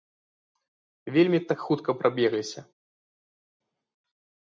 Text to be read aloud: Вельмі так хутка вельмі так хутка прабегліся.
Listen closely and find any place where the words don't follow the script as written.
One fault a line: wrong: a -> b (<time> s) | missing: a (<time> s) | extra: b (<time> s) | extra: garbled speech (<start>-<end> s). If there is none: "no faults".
missing: вельмі так хутка (1.9 s)